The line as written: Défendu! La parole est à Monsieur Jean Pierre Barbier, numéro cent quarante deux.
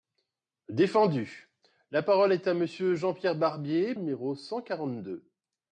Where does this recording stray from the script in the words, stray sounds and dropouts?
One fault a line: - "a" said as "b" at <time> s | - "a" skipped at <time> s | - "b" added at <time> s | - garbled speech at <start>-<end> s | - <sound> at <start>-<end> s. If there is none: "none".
none